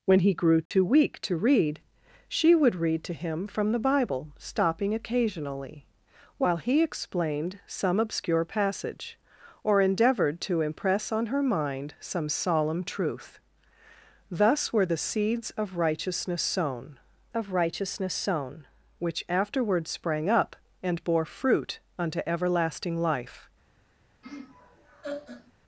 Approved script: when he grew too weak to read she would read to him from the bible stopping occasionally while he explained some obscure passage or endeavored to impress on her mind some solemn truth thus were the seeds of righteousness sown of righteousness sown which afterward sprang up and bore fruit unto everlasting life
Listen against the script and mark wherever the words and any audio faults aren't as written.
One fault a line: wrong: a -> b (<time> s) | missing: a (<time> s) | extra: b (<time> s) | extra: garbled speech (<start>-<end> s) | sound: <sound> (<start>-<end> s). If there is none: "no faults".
sound: dropout (0.7-0.7 s)
sound: laugh (24.2-25.5 s)